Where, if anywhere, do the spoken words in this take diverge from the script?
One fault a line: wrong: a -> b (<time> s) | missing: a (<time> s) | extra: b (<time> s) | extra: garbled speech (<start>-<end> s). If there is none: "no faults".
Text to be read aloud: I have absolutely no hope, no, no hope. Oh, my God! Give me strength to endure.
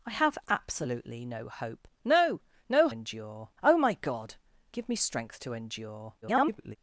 wrong: hope -> endure (2.9 s)
extra: garbled speech (6.2-6.8 s)